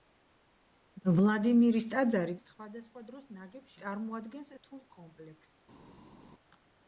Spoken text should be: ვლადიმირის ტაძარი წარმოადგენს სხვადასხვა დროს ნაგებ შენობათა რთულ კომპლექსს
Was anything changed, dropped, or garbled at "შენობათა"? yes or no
yes